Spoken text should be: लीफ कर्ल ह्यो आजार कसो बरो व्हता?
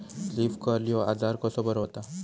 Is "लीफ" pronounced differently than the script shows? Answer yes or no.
no